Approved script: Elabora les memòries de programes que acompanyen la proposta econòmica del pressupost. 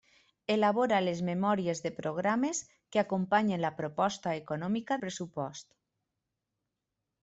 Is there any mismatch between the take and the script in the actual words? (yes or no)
yes